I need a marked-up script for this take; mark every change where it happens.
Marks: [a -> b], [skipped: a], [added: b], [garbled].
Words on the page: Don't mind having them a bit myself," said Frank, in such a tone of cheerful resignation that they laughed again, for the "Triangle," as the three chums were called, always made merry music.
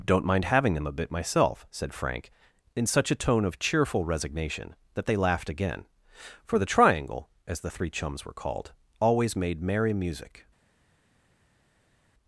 Don't mind having them a bit myself," said Frank, in such a tone of cheerful resignation that they laughed again, for the "Triangle," as the three chums were called, always made merry music.